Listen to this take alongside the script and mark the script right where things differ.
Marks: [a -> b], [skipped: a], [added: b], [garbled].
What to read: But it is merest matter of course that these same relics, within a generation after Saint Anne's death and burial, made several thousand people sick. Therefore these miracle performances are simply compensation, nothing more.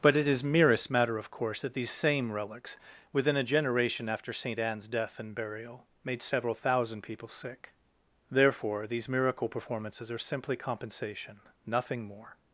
But it is merest matter of course that these same relics, within a generation after Saint Anne's death and burial, made several thousand people sick. Therefore these miracle performances are simply compensation, nothing more.